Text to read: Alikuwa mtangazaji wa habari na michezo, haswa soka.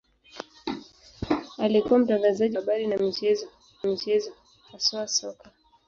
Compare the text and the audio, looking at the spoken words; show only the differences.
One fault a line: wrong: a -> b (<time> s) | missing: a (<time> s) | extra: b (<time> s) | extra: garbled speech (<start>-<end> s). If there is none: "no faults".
missing: wa (2.6 s)
extra: michezo (3.8 s)